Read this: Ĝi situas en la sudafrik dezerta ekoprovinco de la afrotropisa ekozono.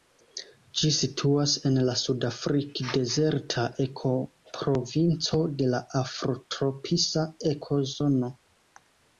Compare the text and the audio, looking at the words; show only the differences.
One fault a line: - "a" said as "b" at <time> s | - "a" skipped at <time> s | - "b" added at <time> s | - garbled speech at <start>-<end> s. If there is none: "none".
none